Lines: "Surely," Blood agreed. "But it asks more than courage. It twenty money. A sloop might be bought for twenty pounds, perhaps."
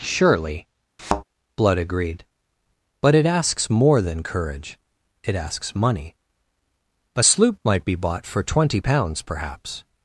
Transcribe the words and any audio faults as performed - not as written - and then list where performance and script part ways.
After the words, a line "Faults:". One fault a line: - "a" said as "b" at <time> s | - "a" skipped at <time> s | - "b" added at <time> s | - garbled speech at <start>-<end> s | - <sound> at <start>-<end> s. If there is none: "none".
"Surely," Blood agreed. "But it asks more than courage. It asks money. A sloop might be bought for twenty pounds, perhaps."
Faults:
- thud at 1.0-1.2 s
- "twenty" said as "asks" at 5.4 s